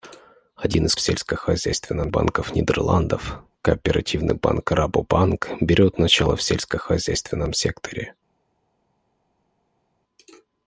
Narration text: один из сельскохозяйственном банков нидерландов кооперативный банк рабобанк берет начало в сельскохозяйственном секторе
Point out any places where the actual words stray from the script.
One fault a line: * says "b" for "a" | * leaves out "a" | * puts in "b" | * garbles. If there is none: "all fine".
all fine